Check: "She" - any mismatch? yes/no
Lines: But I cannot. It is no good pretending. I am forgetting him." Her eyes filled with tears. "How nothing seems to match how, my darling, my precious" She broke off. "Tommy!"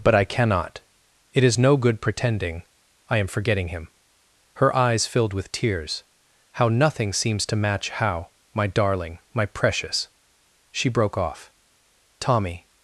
no